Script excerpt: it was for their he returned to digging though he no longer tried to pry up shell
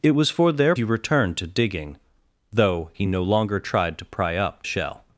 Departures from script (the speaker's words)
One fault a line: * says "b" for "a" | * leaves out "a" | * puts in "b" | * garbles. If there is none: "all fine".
all fine